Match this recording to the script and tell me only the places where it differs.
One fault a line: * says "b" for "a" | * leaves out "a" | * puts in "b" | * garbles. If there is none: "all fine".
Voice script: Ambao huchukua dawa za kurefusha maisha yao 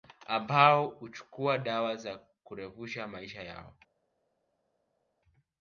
all fine